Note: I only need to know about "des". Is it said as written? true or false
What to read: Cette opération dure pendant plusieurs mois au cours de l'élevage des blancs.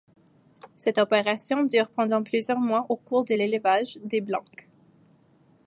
true